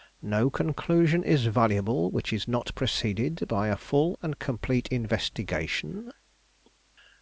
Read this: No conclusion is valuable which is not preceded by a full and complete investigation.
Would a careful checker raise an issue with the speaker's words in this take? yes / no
no